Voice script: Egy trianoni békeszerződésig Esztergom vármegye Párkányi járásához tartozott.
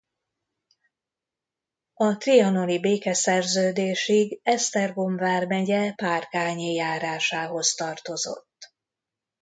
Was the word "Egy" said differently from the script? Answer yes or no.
yes